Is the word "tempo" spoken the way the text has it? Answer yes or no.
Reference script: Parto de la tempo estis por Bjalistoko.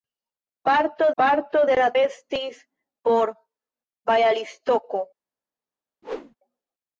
no